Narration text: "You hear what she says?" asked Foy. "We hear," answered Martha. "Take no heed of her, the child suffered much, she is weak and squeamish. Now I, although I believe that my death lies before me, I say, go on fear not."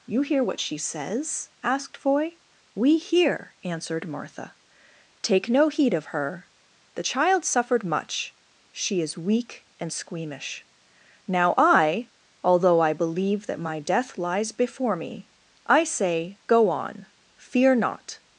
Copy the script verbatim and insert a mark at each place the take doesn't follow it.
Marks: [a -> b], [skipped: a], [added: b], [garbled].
"You hear what she says?" asked Foy. "We hear," answered Martha. "Take no heed of her, the child suffered much, she is weak and squeamish. Now I, although I believe that my death lies before me, I say, go on fear not."